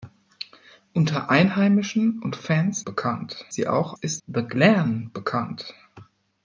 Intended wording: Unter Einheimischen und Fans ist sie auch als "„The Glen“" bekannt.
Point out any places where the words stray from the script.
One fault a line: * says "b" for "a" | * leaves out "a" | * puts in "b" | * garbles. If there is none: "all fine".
* says "bekannt" for "ist"
* says "ist" for "als"